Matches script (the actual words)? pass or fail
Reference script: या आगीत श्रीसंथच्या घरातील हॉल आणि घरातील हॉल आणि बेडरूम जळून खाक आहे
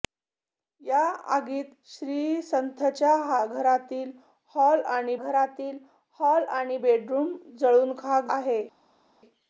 pass